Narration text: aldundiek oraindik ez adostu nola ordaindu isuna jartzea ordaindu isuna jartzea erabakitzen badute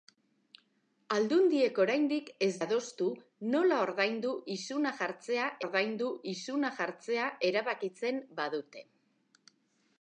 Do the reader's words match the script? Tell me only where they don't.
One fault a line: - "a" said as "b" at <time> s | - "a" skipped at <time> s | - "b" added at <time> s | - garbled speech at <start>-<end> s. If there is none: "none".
none